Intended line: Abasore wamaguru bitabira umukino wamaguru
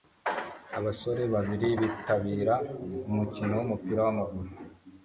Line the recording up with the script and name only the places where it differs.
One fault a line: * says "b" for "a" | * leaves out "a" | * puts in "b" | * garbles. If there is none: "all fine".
* says "babiri" for "wamaguru"
* puts in "wumupira"